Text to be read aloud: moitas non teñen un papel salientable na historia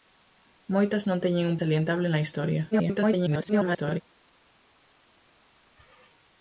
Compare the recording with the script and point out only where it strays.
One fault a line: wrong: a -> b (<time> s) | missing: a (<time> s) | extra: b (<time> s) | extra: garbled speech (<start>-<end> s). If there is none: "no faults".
missing: papel (1.6 s)
extra: garbled speech (2.7-4.0 s)